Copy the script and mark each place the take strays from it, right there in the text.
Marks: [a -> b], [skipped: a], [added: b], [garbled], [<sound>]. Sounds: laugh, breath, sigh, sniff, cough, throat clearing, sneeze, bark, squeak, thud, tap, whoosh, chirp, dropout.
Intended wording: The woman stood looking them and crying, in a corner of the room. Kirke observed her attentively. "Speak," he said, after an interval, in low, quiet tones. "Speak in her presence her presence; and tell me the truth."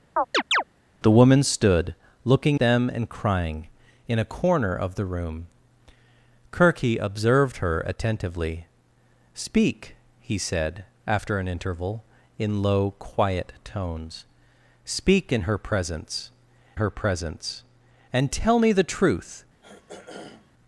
[chirp] The woman stood looking them and crying, in a corner of the room. Kirke observed her attentively. "Speak," he said, after an interval, in low, quiet tones. "Speak in her presence her presence; and tell me the truth." [throat clearing]